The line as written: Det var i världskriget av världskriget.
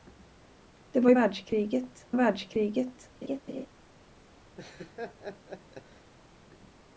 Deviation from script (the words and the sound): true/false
true